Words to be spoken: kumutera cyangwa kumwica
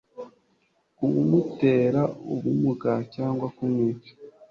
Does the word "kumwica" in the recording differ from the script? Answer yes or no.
no